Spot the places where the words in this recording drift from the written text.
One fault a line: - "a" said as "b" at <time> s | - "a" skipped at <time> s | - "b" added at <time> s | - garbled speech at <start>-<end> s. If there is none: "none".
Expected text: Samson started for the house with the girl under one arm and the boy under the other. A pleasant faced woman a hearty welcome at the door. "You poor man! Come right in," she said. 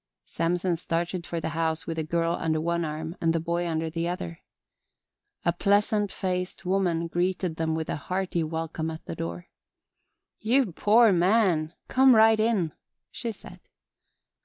- "greeted them with" added at 7.1 s